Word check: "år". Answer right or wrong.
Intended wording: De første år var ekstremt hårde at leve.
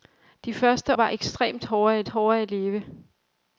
wrong